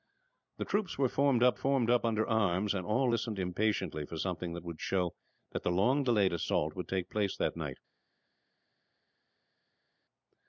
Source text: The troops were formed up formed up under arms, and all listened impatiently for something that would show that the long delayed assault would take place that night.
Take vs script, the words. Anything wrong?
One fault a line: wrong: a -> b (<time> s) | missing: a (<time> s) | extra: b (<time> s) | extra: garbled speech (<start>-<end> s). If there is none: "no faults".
no faults